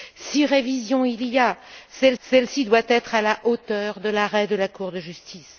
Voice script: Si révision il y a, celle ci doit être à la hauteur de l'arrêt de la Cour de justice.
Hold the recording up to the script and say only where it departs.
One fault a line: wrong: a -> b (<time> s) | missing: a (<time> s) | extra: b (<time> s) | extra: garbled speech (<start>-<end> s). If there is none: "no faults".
extra: celle (2.2 s)